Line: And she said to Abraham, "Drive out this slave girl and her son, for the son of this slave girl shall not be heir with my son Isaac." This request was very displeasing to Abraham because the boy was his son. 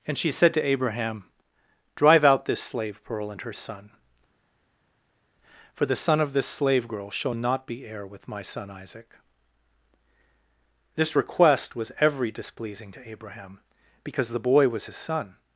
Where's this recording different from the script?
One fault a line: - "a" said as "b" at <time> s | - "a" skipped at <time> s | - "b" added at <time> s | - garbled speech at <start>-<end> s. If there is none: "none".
- "girl" said as "pearl" at 3.0 s
- "very" said as "every" at 12.0 s